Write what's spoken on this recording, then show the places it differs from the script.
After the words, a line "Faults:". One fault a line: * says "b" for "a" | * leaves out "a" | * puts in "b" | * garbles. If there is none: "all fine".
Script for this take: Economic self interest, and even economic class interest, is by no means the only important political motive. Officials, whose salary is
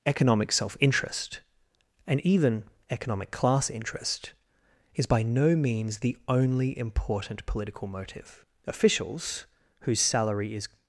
Economic self interest, and even economic class interest, is by no means the only important political motive. Officials, whose salary is
Faults:
all fine